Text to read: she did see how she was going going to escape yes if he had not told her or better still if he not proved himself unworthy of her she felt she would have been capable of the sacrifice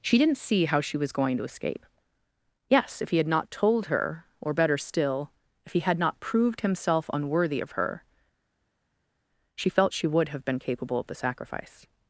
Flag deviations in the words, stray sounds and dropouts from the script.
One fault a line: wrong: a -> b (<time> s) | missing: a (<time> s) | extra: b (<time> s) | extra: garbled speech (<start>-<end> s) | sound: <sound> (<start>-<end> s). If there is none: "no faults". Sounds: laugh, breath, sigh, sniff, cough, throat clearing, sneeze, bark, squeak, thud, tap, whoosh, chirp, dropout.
wrong: did -> didn't (0.2 s)
missing: going (1.4 s)
extra: had (5.8 s)